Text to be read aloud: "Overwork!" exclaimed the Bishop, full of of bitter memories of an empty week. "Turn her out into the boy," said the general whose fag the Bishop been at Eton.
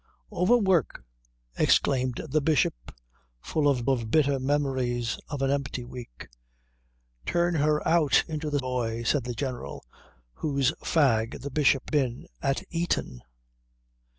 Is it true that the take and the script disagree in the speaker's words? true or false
false